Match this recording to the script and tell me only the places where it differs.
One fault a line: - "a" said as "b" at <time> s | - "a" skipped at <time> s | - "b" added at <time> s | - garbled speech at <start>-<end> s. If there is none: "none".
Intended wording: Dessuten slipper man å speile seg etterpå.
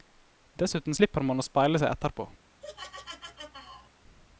none